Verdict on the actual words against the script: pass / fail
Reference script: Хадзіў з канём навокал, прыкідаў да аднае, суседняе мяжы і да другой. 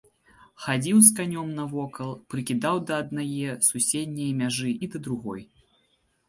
pass